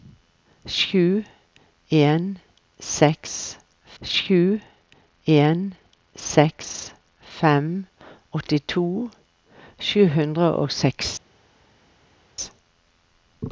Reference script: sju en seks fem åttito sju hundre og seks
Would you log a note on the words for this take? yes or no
yes